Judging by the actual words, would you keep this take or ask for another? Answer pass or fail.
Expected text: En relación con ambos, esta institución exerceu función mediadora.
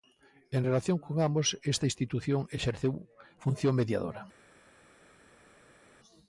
pass